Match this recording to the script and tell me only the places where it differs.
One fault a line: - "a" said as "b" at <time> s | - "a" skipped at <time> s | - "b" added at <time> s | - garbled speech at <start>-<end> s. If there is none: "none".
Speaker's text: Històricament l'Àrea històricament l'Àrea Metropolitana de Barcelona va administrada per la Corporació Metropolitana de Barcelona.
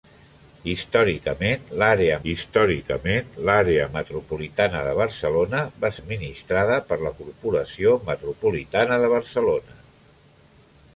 none